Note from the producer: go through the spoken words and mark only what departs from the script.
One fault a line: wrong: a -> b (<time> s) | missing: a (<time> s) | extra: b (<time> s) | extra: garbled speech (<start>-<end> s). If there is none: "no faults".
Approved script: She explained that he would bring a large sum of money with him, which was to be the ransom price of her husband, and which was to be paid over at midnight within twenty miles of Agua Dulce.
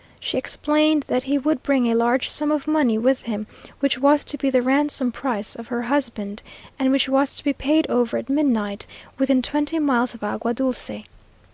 no faults